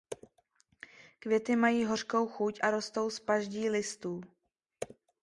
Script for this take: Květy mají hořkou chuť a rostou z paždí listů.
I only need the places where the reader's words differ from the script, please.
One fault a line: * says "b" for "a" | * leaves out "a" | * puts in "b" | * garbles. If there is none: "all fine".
all fine